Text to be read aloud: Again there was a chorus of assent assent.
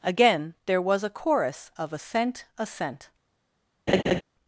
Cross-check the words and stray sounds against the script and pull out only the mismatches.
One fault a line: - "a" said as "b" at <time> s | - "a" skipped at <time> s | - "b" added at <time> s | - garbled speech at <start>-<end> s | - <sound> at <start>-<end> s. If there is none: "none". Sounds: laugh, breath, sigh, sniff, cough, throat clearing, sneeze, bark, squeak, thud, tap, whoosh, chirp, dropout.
- laugh at 3.9-4.2 s